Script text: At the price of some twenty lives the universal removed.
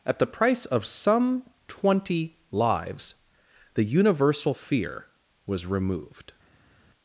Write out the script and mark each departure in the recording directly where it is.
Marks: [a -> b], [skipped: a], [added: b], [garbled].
At the price of some twenty lives the universal [added: fear was] removed.